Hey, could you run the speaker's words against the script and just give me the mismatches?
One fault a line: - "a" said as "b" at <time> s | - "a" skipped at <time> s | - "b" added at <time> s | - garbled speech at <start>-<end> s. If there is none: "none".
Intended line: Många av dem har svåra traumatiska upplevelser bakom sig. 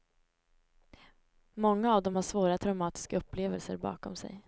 none